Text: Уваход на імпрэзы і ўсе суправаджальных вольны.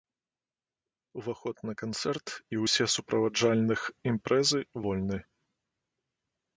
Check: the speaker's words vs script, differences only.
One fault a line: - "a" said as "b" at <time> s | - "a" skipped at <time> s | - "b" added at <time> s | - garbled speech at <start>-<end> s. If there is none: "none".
- "імпрэзы" said as "канцэрт" at 1.8 s
- "імпрэзы" added at 4.1 s